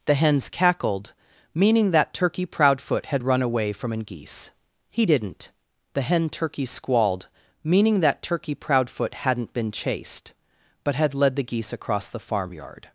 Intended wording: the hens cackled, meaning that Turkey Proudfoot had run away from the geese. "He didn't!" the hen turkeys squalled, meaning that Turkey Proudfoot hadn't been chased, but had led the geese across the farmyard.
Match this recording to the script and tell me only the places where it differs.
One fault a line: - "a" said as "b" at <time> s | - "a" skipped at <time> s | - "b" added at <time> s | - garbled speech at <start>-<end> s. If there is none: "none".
- "the" said as "an" at 3.9 s